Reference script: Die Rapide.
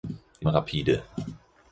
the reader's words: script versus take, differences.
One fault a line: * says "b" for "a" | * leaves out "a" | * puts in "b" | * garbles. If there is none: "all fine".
all fine